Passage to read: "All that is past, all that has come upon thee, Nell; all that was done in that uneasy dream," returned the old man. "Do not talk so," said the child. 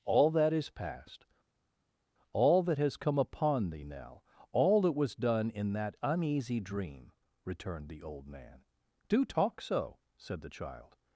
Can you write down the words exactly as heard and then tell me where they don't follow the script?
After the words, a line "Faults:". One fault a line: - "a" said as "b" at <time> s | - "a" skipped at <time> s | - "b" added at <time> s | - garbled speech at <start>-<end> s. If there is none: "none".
"All that is past, all that has come upon thee, Nell; all that was done in that uneasy dream," returned the old man. "Do talk so," said the child.
Faults:
- "not" skipped at 9.2 s